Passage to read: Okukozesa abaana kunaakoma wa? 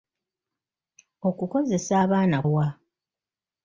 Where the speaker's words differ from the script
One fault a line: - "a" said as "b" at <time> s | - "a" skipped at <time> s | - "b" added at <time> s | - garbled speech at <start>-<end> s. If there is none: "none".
- "kunaakoma" skipped at 2.4 s